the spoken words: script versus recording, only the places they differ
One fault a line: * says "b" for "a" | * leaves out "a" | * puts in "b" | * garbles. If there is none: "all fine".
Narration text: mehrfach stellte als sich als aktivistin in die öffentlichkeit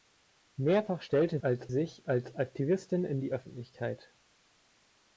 all fine